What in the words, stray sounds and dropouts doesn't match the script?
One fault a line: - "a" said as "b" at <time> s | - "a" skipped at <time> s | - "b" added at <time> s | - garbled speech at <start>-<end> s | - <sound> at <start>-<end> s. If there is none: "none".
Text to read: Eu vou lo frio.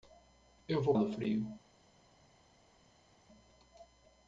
none